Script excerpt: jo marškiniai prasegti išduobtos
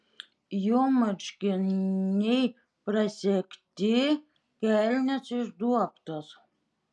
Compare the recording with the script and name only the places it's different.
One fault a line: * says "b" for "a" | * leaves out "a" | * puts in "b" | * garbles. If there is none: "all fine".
* puts in "kelnės"